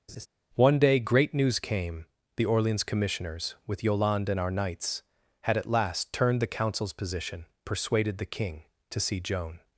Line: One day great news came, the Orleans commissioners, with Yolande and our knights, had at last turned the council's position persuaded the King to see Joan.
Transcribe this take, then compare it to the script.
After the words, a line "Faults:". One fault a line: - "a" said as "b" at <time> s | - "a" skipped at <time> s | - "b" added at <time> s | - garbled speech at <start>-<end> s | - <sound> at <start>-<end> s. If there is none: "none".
One day great news came, the Orleans commissioners, with Yolande and our knights, had at last turned the council's position persuaded the King to see Joan.
Faults:
- laugh at 0.1-0.3 s